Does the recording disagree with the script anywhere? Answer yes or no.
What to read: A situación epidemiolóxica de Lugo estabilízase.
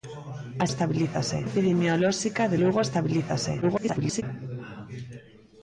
yes